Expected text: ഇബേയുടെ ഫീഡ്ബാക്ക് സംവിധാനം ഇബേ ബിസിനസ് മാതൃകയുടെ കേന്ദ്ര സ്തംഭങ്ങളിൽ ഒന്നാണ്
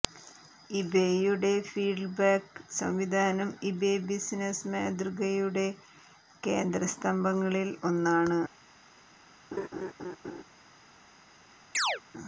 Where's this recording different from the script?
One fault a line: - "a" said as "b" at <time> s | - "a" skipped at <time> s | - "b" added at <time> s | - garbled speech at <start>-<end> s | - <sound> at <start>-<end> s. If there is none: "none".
- laugh at 9.5-10.4 s
- chirp at 11.7-12.0 s